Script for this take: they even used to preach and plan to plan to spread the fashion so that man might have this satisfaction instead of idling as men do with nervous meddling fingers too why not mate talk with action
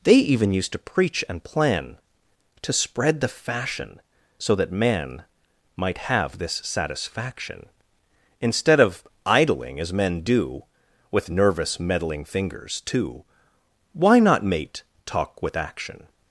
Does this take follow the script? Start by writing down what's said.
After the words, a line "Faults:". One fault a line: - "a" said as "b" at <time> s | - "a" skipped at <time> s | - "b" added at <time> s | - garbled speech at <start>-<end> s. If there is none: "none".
they even used to preach and plan to spread the fashion so that man might have this satisfaction instead of idling as men do with nervous meddling fingers too why not mate talk with action
Faults:
- "plan to" skipped at 2.7 s